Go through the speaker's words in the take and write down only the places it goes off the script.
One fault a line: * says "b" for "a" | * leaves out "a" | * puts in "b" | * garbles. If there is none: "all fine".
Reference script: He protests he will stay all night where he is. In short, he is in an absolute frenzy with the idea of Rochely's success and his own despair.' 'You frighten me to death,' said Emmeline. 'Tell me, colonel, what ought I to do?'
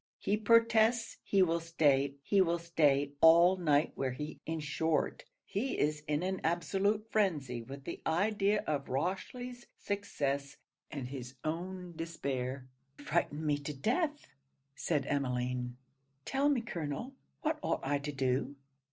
* puts in "he will stay"
* leaves out "is"
* leaves out "You"